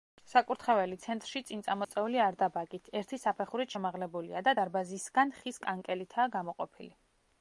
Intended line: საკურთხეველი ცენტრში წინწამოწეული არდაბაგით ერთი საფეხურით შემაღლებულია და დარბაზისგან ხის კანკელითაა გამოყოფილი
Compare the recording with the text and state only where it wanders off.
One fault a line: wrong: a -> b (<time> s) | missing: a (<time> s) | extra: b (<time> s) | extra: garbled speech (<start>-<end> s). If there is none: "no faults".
no faults